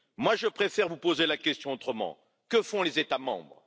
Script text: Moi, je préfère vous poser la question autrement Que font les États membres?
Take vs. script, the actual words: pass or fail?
pass